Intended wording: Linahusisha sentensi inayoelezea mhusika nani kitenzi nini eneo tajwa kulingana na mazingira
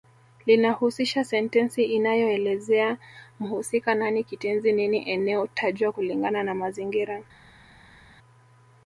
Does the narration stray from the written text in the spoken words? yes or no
no